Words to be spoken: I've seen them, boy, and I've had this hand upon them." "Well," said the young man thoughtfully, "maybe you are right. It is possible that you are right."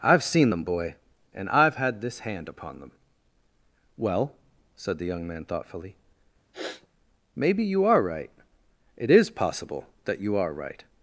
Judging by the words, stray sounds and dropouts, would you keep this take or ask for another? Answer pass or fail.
fail